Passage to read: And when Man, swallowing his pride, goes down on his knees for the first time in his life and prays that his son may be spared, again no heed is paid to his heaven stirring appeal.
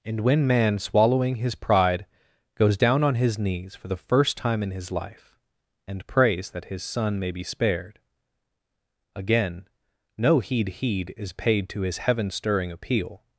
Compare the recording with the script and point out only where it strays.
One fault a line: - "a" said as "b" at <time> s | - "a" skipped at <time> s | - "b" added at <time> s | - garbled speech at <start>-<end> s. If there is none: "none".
- "heed" added at 10.8 s